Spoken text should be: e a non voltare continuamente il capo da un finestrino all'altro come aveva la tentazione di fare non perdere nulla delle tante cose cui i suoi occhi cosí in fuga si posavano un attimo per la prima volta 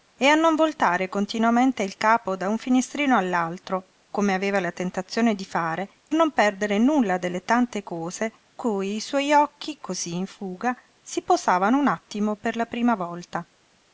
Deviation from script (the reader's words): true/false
false